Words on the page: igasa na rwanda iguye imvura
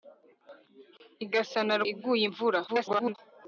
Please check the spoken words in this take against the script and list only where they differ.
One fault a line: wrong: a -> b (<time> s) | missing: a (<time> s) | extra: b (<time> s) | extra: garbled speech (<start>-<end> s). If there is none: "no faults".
missing: rwanda (1.8 s)
extra: garbled speech (2.7-3.2 s)